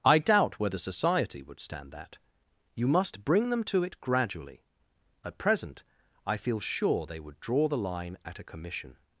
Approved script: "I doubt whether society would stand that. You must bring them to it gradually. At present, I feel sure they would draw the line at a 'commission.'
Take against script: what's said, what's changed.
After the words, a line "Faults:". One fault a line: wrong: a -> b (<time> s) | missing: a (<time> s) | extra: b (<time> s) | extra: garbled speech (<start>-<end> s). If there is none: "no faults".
"I doubt whether society would stand that. You must bring them to it gradually. At present, I feel sure they would draw the line at a 'commission.'
Faults:
no faults